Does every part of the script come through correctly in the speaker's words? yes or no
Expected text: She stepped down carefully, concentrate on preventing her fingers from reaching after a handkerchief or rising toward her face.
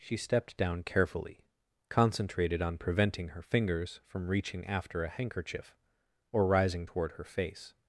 no